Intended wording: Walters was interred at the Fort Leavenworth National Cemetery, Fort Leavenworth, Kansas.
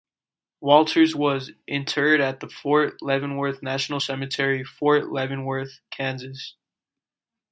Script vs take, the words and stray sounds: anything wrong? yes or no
no